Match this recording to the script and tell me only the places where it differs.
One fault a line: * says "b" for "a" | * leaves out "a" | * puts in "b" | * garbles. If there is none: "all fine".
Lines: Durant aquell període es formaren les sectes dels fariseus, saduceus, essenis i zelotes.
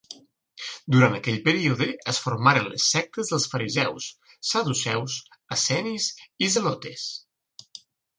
all fine